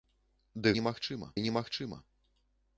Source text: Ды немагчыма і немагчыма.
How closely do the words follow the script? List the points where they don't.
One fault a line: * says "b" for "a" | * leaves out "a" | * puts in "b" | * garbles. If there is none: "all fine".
all fine